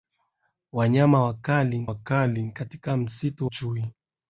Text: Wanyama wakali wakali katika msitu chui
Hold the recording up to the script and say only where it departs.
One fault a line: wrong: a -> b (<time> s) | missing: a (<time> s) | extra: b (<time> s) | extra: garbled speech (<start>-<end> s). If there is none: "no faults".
no faults